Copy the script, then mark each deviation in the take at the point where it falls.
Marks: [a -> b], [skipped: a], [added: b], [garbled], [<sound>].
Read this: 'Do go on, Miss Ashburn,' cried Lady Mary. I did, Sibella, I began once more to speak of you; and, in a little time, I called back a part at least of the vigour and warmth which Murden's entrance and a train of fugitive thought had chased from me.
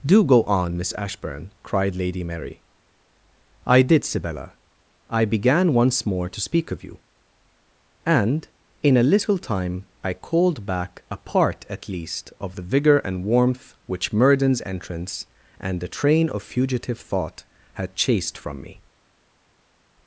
'Do go on, Miss Ashburn,' cried Lady Mary. I did, Sibella, I began once more to speak of you; and, in a little time, I called back a part at least of the vigour and warmth which Murden's entrance and [a -> the] train of fugitive thought had chased from me.